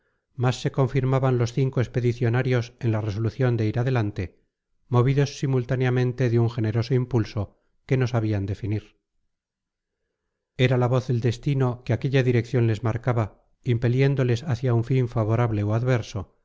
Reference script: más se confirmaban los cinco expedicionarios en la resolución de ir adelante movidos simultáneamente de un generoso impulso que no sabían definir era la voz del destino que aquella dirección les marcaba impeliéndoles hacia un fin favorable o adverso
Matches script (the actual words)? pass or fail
pass